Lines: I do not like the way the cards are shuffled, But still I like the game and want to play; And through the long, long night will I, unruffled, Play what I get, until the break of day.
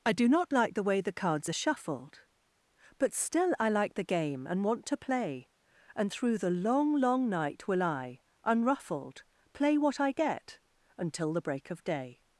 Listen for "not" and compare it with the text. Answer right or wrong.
right